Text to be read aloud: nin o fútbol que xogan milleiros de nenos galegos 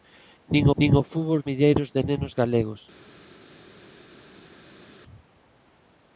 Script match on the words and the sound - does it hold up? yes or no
no